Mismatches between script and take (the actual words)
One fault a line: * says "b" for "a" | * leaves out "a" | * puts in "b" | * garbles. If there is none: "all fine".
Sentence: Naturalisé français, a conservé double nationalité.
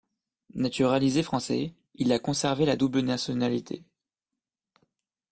* puts in "il"
* puts in "la"